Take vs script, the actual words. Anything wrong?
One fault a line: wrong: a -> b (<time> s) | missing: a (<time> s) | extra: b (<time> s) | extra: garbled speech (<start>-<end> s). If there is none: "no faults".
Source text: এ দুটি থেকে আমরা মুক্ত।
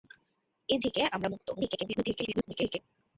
missing: দুটি (0.8 s)
extra: garbled speech (1.5-2.8 s)